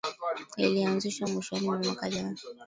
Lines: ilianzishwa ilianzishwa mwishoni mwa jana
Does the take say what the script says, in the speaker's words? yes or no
no